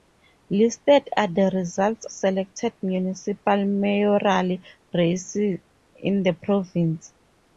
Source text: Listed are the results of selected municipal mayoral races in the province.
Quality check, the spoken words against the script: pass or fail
fail